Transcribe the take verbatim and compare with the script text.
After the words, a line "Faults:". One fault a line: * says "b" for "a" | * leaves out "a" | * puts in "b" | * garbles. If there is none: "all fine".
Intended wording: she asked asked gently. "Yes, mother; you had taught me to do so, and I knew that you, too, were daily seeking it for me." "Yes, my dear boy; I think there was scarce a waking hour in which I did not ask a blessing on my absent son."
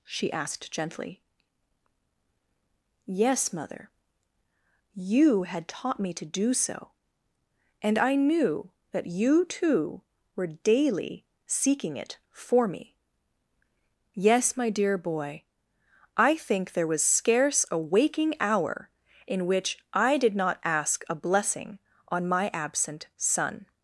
she asked gently. "Yes, mother; you had taught me to do so, and I knew that you, too, were daily seeking it for me." "Yes, my dear boy; I think there was scarce a waking hour in which I did not ask a blessing on my absent son."
Faults:
* leaves out "asked"